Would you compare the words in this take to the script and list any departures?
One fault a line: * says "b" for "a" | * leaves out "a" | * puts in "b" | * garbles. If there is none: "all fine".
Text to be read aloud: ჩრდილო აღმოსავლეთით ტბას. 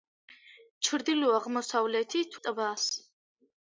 all fine